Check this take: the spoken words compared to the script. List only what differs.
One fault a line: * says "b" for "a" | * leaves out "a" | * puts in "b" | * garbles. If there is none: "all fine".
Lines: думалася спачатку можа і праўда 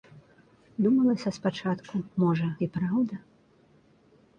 all fine